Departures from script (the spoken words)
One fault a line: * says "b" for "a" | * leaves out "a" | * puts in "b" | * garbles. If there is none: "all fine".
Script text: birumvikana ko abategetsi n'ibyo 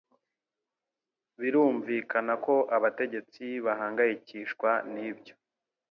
* puts in "bahangayikishwa"